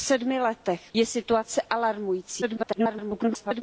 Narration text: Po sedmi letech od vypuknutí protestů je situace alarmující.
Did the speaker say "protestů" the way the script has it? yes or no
no